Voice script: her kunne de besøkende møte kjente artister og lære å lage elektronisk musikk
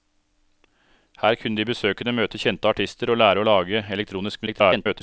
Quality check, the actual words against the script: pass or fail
fail